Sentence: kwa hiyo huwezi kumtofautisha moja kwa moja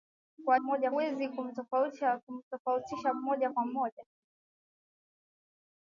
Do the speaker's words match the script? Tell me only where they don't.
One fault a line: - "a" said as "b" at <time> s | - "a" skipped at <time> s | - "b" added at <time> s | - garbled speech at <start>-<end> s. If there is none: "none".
- "hiyo" said as "moja" at 0.5 s